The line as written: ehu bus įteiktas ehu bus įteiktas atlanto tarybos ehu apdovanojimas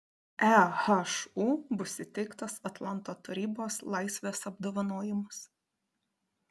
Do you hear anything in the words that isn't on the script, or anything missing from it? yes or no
yes